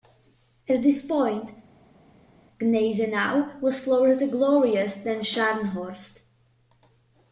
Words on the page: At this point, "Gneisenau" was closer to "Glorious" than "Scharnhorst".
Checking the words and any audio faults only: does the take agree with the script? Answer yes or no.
yes